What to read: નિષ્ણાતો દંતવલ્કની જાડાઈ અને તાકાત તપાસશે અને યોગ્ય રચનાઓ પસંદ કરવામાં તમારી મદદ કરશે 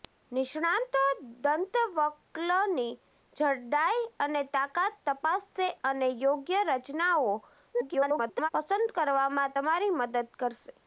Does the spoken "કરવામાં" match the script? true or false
true